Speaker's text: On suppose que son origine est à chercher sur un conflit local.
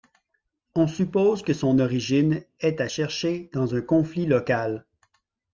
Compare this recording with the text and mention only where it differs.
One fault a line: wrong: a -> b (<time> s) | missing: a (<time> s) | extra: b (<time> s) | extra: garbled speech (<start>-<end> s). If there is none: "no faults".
wrong: sur -> dans (3.5 s)